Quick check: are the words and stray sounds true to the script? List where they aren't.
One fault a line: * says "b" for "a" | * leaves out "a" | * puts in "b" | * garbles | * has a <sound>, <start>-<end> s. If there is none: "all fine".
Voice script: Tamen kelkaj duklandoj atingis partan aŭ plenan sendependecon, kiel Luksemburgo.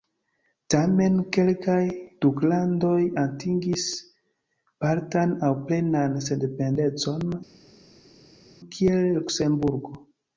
all fine